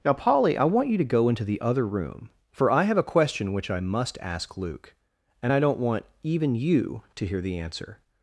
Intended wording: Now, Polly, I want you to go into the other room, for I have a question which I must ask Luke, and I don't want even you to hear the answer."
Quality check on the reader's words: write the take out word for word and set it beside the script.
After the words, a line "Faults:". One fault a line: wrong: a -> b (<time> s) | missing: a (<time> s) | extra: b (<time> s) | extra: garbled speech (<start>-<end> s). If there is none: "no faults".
Now, Polly, I want you to go into the other room, for I have a question which I must ask Luke, and I don't want even you to hear the answer."
Faults:
no faults